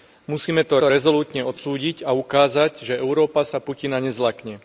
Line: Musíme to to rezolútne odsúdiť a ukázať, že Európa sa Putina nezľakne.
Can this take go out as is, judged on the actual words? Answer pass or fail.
pass